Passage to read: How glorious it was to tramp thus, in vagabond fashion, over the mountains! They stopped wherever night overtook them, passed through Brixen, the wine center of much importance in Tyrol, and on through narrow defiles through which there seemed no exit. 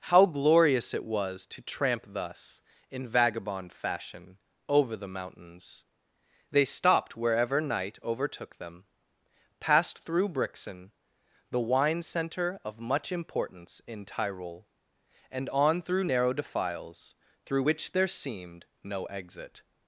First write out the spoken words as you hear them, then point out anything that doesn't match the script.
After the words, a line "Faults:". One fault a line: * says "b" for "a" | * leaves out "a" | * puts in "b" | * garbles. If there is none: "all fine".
How glorious it was to tramp thus, in vagabond fashion, over the mountains! They stopped wherever night overtook them, passed through Brixen, the wine center of much importance in Tyrol, and on through narrow defiles through which there seemed no exit.
Faults:
all fine